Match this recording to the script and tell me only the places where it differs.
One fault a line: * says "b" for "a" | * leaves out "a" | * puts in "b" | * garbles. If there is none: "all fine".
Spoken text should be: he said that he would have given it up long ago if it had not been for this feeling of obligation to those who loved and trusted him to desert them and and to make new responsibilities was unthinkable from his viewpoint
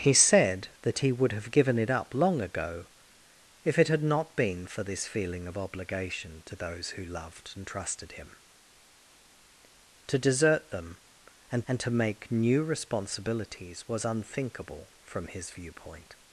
all fine